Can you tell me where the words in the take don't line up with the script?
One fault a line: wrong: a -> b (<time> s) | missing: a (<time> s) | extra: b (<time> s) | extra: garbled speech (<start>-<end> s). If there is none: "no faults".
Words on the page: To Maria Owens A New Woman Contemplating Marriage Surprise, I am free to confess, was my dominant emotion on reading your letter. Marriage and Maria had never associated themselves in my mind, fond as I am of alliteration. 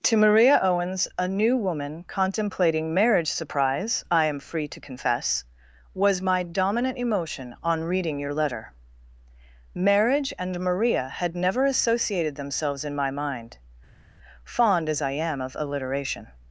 no faults